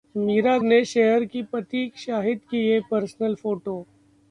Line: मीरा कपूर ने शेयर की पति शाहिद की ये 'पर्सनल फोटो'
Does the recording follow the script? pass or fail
fail